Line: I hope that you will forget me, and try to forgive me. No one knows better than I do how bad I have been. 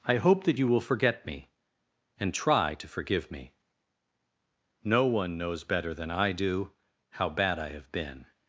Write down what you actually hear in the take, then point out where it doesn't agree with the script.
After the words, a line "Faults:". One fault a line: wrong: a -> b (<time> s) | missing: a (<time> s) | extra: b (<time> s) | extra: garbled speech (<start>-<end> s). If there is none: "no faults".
I hope that you will forget me, and try to forgive me. No one knows better than I do how bad I have been.
Faults:
no faults